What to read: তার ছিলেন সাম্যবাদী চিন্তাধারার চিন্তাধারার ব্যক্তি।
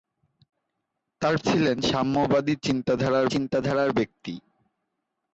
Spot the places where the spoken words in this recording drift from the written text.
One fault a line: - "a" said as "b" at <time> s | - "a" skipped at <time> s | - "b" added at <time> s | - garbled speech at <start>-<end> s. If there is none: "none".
none